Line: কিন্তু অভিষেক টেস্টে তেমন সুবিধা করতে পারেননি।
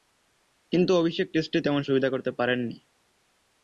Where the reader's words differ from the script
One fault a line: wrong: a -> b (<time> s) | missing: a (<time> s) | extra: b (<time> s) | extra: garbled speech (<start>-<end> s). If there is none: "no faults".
no faults